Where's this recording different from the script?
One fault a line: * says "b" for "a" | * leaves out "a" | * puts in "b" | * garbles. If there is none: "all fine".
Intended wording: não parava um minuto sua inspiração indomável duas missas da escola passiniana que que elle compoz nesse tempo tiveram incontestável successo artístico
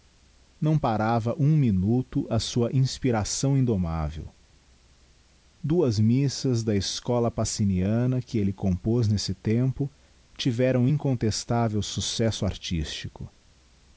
* puts in "a"
* leaves out "que"